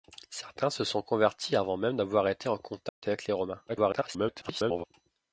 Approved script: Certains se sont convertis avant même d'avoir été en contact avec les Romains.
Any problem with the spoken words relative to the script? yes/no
yes